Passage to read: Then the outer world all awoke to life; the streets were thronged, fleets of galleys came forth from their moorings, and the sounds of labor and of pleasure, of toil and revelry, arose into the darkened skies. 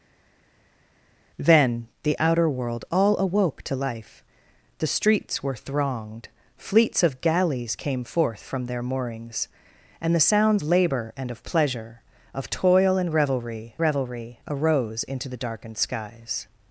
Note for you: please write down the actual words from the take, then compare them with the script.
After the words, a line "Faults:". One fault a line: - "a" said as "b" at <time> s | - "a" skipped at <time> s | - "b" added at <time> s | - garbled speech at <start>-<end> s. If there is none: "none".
Then the outer world all awoke to life; the streets were thronged, fleets of galleys came forth from their moorings, and the sounds labor and of pleasure, of toil and revelry revelry, arose into the darkened skies.
Faults:
- "of" skipped at 10.6 s
- "revelry" added at 13.8 s